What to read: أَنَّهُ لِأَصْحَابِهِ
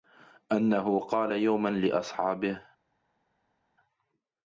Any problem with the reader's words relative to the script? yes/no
yes